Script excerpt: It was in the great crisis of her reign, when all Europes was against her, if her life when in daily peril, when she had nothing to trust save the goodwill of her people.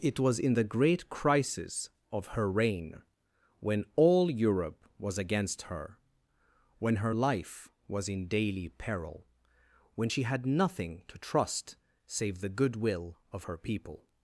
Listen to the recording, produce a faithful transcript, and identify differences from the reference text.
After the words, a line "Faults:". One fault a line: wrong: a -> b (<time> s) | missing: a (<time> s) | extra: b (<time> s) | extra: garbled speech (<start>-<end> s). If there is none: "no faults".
It was in the great crisis of her reign, when all Europe was against her, when her life was in daily peril, when she had nothing to trust save the goodwill of her people.
Faults:
wrong: Europes -> Europe (4.3 s)
wrong: if -> when (6.8 s)
wrong: when -> was (7.9 s)